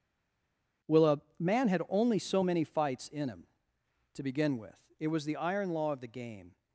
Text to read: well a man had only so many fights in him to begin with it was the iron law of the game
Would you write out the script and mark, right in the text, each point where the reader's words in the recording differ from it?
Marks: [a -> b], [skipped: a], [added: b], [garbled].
well a man had only so many fights in him to begin with it was the iron law of the game